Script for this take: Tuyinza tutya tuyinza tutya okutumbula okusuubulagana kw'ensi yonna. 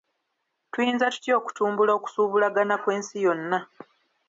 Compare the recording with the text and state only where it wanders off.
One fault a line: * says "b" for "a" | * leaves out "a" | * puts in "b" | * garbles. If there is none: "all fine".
* leaves out "tuyinza tutya"